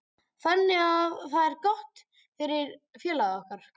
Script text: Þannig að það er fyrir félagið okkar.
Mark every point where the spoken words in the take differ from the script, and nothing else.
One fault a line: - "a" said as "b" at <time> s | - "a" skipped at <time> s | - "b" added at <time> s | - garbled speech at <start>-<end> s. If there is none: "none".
- "gott" added at 1.7 s